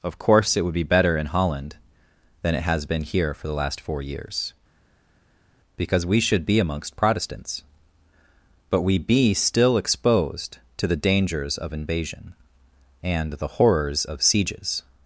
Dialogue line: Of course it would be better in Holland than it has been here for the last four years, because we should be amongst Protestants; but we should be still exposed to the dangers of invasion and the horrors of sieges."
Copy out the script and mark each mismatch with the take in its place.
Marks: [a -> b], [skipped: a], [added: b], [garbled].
Of course it would be better in Holland than it has been here for the last four years, because we should be amongst Protestants; but we [skipped: should] be still exposed to the dangers of invasion and the horrors of sieges."